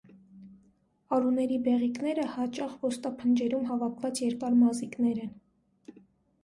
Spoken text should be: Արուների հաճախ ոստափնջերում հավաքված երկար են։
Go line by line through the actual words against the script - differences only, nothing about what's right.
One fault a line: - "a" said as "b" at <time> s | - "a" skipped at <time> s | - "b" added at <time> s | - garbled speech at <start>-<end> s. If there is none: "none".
- "բեղիկները" added at 1.7 s
- "մազիկներ" added at 4.6 s